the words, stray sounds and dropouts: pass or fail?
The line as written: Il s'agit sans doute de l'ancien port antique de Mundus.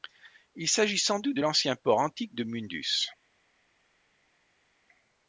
pass